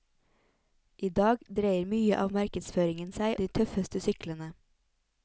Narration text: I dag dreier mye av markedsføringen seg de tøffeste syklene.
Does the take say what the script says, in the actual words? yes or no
yes